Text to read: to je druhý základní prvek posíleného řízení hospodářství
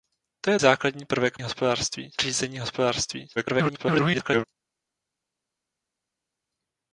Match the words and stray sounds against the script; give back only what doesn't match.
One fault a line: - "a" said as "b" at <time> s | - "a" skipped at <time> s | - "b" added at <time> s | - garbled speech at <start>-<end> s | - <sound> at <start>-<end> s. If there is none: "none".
- "druhý" skipped at 0.6 s
- "posíleného" said as "hospodářství" at 1.4 s
- garbled speech at 3.4-4.4 s